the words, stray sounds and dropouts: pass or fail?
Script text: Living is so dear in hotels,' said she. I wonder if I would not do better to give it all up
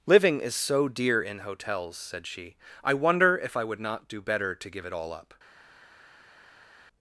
pass